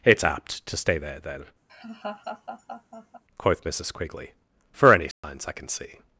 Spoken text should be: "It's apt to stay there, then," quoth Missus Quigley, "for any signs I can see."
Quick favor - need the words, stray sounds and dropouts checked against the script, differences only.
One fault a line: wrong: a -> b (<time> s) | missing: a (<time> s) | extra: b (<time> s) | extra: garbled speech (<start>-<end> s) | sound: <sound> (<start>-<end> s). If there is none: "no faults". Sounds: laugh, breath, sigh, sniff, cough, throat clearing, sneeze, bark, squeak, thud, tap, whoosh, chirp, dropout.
sound: laugh (1.7-3.2 s)
sound: dropout (5.1-5.2 s)